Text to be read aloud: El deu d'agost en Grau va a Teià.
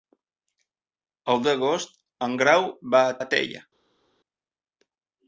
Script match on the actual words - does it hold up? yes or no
no